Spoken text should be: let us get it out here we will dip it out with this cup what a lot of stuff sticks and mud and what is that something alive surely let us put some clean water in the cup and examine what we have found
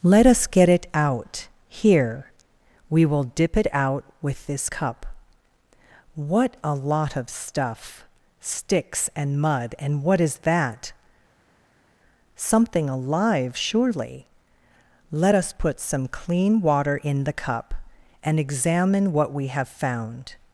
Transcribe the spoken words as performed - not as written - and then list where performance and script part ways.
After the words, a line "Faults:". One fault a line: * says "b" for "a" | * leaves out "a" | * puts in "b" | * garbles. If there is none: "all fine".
let us get it out here we will dip it out with this cup what a lot of stuff sticks and mud and what is that something alive surely let us put some clean water in the cup and examine what we have found
Faults:
all fine